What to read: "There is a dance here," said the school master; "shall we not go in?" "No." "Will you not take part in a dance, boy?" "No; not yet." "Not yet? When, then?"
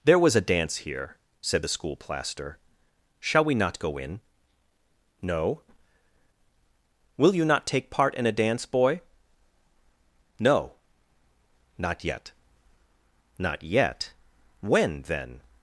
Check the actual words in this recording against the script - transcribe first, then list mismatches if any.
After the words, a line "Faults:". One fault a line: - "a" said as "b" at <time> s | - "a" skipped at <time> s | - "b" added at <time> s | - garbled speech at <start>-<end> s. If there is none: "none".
"There was a dance here," said the school plaster; "shall we not go in?" "No." "Will you not take part in a dance, boy?" "No; not yet." "Not yet? When, then?"
Faults:
- "is" said as "was" at 0.2 s
- "master" said as "plaster" at 2.0 s